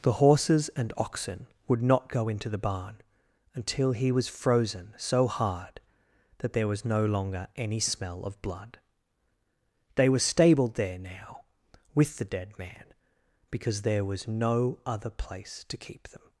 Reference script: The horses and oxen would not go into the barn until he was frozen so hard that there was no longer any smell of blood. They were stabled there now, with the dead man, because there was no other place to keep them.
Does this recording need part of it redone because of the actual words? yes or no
no